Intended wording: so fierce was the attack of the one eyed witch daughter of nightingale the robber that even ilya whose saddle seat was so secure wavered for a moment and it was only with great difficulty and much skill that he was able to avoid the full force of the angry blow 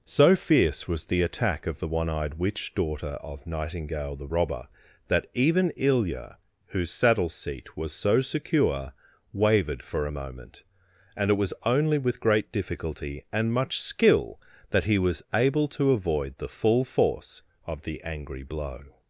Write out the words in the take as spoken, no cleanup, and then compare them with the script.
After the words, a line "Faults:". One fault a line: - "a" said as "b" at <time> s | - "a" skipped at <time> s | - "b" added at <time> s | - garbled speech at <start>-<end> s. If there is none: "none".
so fierce was the attack of the one eyed witch daughter of nightingale the robber that even ilya whose saddle seat was so secure wavered for a moment and it was only with great difficulty and much skill that he was able to avoid the full force of the angry blow
Faults:
none